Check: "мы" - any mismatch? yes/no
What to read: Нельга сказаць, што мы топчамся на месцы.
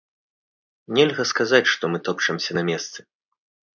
no